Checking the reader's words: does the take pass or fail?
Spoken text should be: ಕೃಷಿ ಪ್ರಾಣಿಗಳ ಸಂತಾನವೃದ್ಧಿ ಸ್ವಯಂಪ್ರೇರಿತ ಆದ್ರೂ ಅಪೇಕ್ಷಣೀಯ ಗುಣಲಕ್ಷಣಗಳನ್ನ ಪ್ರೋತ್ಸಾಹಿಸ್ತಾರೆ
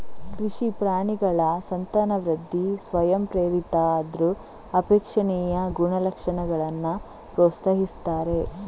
pass